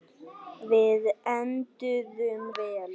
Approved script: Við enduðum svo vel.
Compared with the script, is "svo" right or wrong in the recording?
wrong